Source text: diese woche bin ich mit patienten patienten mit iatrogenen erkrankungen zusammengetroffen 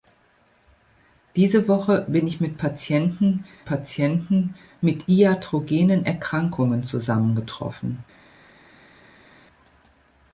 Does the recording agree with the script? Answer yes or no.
yes